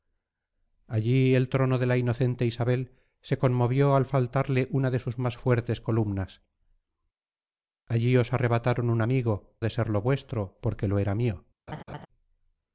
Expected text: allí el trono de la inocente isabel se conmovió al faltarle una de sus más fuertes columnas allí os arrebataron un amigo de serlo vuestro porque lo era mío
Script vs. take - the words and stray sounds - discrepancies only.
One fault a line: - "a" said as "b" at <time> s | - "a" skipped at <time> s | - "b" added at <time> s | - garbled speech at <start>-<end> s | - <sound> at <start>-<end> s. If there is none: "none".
- laugh at 11.7-12.1 s